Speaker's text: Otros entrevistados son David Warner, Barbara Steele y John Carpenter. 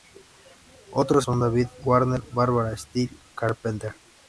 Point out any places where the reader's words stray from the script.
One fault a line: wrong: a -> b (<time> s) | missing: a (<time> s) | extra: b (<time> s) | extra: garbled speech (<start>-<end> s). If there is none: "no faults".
missing: entrevistados (1.3 s)
missing: y John (3.2 s)